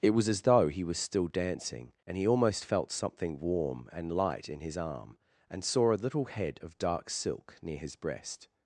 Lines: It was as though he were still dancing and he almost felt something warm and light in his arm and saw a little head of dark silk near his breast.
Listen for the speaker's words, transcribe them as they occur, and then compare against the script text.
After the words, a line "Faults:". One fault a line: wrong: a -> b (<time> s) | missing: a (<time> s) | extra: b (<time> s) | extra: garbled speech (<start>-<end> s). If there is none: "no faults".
It was as though he was still dancing and he almost felt something warm and light in his arm and saw a little head of dark silk near his breast.
Faults:
wrong: were -> was (0.8 s)